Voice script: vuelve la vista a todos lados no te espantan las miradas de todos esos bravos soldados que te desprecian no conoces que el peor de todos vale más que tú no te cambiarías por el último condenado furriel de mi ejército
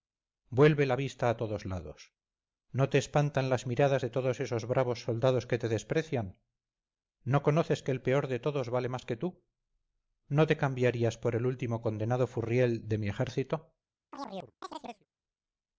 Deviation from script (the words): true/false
false